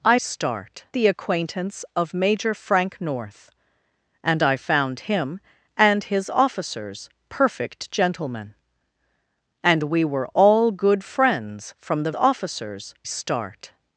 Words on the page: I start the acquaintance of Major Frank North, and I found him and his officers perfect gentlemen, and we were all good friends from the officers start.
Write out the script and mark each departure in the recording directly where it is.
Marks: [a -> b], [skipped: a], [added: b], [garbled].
I start the acquaintance of Major Frank North, and I found him and his officers perfect gentlemen, and we were all good friends from the officers start.